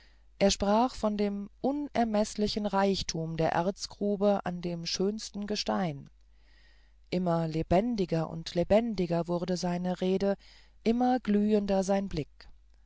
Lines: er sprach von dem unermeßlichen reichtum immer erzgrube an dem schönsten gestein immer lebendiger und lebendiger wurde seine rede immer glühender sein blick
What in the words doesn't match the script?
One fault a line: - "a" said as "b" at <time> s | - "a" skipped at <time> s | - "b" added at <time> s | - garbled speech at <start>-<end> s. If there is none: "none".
- "immer" said as "der" at 3.4 s